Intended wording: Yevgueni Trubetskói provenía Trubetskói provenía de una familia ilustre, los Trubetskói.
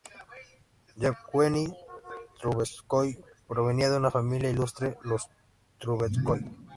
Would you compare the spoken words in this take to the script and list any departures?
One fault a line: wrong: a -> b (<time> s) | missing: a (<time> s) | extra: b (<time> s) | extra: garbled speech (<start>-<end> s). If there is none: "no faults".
missing: Trubetskói provenía (3.9 s)